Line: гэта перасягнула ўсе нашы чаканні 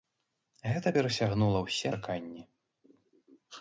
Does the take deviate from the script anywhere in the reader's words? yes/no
yes